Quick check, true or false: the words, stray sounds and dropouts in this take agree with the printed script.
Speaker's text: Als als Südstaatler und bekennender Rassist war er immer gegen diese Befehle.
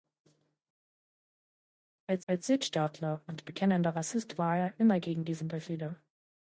true